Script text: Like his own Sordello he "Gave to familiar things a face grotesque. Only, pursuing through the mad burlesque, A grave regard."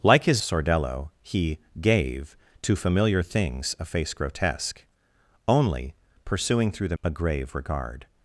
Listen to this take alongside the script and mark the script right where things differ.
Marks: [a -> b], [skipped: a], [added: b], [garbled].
Like his [skipped: own] Sordello he "Gave to familiar things a face grotesque. Only, pursuing through the [skipped: mad burlesque,] A grave regard."